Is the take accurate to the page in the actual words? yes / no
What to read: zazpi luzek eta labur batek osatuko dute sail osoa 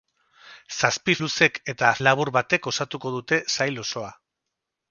yes